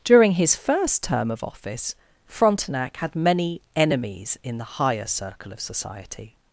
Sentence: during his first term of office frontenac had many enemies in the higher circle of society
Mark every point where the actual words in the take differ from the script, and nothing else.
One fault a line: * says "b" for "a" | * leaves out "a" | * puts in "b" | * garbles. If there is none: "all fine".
all fine